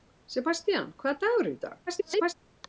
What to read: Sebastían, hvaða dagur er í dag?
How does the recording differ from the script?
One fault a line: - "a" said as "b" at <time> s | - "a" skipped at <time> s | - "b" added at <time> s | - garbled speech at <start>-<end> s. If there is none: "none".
- garbled speech at 1.9-2.3 s